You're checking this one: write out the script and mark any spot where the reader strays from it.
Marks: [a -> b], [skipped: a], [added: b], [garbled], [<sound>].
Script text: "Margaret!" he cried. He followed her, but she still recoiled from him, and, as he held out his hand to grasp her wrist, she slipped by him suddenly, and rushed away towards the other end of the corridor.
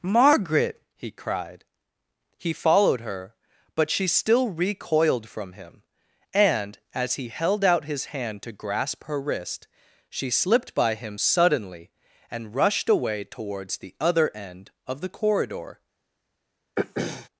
"Margaret!" he cried. He followed her, but she still recoiled from him, and, as he held out his hand to grasp her wrist, she slipped by him suddenly, and rushed away towards the other end of the corridor. [throat clearing]